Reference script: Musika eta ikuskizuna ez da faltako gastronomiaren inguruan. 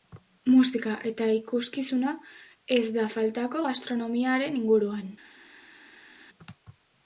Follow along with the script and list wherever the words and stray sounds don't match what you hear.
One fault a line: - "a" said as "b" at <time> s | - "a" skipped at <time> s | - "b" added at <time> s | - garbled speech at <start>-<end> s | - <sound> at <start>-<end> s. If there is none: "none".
none